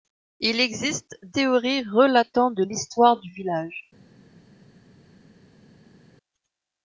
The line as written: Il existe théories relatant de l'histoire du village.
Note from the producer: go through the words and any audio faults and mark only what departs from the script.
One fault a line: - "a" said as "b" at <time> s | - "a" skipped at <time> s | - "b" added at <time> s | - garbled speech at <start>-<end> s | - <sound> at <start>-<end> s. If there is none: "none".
none